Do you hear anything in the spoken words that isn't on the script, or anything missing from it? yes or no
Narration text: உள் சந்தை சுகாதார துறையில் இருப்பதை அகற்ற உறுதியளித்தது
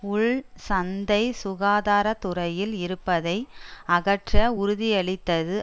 no